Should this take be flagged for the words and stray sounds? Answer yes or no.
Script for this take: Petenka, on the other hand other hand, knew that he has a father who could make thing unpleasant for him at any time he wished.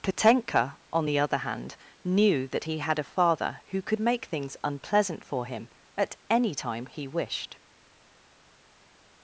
yes